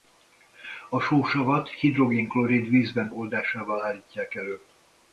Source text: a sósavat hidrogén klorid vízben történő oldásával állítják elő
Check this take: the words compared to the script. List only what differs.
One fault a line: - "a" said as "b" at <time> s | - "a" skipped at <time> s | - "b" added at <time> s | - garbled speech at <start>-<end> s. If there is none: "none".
- "történő" skipped at 3.1 s